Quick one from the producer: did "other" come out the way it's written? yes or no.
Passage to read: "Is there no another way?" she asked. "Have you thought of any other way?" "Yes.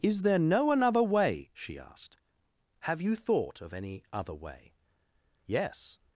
yes